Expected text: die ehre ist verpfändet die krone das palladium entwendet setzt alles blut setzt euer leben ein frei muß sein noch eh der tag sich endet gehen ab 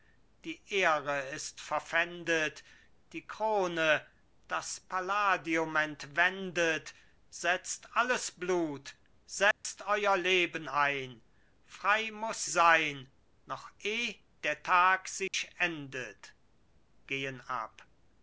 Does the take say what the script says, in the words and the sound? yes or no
no